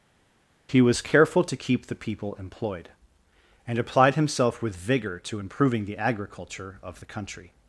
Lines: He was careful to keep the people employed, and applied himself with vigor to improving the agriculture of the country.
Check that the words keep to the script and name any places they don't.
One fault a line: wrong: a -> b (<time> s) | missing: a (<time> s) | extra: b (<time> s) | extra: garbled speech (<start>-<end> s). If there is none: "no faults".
no faults